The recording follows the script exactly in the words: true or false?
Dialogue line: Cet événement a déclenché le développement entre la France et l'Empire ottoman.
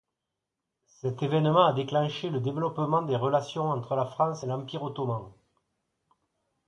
false